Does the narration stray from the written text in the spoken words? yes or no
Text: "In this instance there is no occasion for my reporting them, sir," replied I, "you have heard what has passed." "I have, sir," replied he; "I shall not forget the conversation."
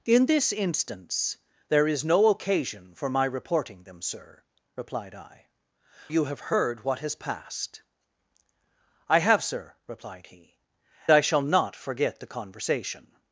no